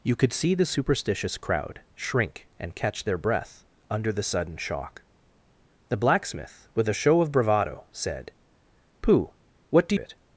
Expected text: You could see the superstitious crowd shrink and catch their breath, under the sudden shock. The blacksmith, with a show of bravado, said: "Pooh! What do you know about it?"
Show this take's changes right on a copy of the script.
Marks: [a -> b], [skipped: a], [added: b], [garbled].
You could see the superstitious crowd shrink and catch their breath, under the sudden shock. The blacksmith, with a show of bravado, said: "Pooh! What do [skipped: you know about] it?"